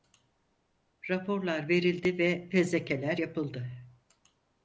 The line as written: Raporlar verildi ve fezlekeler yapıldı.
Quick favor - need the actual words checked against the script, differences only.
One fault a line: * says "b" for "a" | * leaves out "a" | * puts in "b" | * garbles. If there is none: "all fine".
all fine